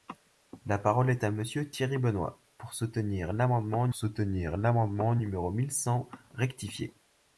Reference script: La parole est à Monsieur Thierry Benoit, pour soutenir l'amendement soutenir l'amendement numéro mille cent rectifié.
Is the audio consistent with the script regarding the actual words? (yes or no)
yes